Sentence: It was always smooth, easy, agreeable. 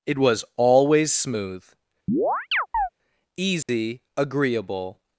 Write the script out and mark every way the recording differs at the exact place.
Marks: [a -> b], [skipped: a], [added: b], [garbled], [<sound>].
It was always smooth, [chirp] easy, [dropout] agreeable.